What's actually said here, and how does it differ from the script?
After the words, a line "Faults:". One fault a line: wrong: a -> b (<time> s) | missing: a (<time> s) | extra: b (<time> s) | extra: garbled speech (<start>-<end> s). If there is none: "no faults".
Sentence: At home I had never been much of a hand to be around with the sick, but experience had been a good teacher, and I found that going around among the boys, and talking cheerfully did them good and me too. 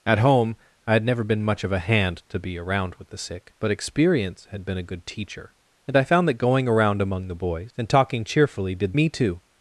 At home I had never been much of a hand to be around with the sick, but experience had been a good teacher, and I found that going around among the boys, and talking cheerfully did me too.
Faults:
missing: them good and (8.9 s)